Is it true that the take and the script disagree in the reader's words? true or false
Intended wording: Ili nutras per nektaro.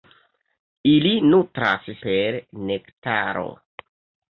false